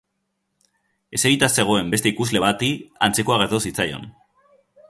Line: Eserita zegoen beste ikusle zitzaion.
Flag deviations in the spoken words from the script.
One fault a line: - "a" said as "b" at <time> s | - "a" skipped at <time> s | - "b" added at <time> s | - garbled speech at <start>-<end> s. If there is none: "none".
- "bati antzekoa gertatu" added at 2.4 s